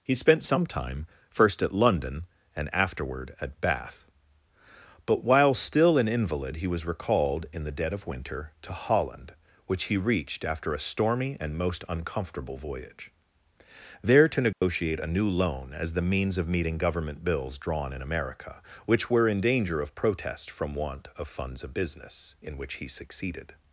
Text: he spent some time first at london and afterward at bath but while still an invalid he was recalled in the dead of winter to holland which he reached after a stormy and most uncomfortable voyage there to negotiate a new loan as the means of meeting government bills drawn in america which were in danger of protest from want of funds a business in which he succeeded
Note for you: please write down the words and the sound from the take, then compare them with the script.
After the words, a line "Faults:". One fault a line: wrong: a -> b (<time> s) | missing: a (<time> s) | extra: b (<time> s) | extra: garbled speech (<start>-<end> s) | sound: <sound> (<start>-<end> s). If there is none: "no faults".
he spent some time first at london and afterward at bath but while still an invalid he was recalled in the dead of winter to holland which he reached after a stormy and most uncomfortable voyage there to negotiate a new loan as the means of meeting government bills drawn in america which were in danger of protest from want of funds of business in which he succeeded
Faults:
sound: dropout (14.5-14.6 s)
wrong: a -> of (21.6 s)